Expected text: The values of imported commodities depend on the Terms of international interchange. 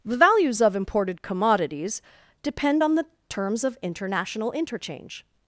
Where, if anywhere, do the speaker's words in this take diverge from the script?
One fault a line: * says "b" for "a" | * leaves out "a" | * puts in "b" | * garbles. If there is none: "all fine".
all fine